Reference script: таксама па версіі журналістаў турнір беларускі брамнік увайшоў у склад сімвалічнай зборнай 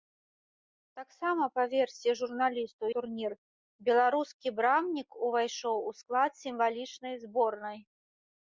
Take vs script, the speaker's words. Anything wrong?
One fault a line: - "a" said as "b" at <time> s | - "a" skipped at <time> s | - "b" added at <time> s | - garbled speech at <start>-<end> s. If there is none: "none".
none